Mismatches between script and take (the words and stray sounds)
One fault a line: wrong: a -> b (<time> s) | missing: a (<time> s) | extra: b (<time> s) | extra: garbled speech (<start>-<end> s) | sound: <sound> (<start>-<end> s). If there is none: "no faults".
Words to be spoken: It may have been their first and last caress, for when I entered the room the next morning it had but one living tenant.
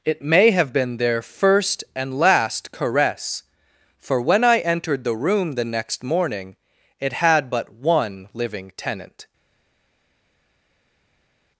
no faults